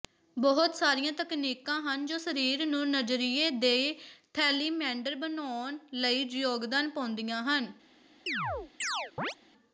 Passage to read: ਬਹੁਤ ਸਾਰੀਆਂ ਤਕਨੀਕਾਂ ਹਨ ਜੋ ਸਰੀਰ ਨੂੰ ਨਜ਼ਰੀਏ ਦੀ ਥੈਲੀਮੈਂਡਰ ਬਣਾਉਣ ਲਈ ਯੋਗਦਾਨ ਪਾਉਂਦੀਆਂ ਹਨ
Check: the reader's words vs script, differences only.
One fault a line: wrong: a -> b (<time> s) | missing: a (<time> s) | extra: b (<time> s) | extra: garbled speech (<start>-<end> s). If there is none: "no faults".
no faults